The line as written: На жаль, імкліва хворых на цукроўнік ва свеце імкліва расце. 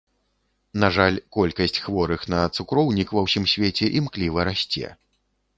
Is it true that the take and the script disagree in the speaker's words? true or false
true